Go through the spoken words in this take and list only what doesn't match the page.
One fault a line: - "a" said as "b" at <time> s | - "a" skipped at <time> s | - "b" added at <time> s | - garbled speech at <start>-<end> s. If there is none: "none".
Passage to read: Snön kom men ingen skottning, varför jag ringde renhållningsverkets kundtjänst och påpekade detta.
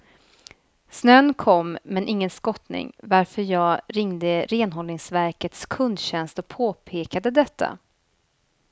none